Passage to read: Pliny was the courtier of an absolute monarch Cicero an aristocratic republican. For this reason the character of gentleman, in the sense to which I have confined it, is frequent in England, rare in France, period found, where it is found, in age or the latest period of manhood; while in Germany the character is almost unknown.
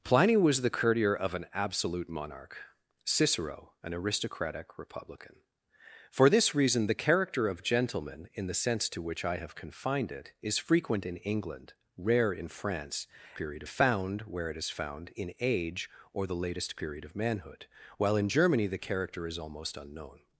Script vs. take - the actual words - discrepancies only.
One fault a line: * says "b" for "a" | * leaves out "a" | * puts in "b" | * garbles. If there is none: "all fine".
all fine